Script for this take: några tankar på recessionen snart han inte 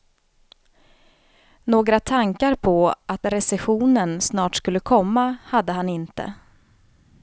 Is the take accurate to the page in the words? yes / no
no